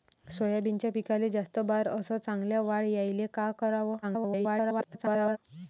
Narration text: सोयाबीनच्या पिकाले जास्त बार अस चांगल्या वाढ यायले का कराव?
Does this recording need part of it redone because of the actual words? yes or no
yes